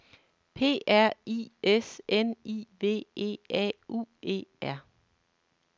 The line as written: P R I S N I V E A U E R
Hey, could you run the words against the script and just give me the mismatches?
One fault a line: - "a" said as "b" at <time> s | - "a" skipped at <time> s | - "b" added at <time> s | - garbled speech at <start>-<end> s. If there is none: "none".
none